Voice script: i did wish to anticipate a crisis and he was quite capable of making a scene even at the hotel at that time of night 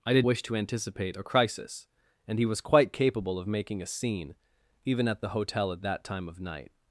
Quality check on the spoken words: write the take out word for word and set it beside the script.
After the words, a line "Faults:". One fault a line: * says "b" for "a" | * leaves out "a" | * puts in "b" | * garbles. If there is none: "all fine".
i did wish to anticipate a crisis and he was quite capable of making a scene even at the hotel at that time of night
Faults:
all fine